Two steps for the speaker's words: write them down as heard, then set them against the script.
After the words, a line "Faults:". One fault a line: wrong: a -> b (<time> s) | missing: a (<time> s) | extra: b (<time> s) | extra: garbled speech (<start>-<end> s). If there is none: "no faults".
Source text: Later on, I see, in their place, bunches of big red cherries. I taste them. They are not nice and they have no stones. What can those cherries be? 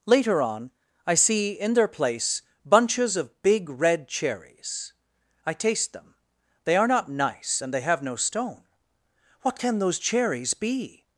Later on, I see, in their place, bunches of big red cherries. I taste them. They are not nice and they have no stone. What can those cherries be?
Faults:
wrong: stones -> stone (8.2 s)